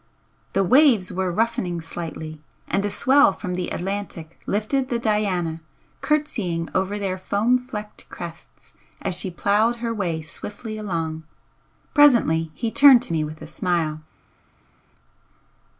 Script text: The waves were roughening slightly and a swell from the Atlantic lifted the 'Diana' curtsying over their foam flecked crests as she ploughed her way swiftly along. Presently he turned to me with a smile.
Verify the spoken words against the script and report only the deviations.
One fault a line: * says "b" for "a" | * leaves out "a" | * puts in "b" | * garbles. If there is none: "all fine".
all fine